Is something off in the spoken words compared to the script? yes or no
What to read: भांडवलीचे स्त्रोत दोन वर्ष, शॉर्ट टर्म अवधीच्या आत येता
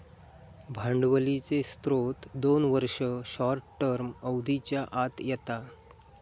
no